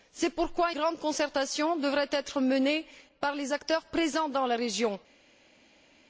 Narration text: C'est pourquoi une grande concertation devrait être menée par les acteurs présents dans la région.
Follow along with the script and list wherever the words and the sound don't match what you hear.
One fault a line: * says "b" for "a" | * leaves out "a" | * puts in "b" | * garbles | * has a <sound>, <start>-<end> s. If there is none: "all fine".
* leaves out "une"